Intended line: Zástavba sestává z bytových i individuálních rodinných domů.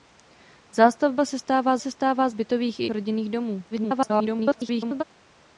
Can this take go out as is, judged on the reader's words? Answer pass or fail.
fail